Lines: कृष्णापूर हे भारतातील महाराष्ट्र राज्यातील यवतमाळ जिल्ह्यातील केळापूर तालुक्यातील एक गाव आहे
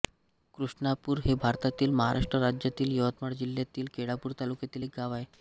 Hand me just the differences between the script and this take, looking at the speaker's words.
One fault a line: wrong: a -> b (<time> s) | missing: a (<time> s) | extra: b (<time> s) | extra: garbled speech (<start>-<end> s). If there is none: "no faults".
no faults